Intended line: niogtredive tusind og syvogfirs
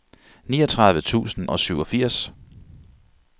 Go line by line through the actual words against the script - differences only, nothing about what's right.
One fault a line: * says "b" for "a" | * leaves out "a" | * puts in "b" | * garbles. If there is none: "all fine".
all fine